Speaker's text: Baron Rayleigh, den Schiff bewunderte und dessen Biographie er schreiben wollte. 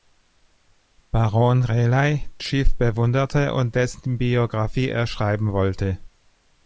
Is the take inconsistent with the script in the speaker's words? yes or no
yes